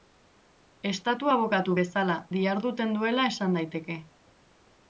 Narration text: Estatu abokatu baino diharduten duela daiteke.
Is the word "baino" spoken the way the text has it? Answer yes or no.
no